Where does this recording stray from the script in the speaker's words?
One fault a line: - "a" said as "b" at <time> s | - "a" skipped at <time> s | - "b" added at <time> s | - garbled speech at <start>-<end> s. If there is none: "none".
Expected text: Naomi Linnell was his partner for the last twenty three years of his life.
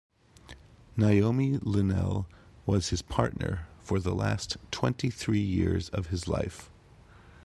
none